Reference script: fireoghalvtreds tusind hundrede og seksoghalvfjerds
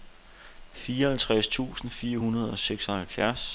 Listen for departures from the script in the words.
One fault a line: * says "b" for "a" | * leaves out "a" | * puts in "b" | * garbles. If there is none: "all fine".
* puts in "fire"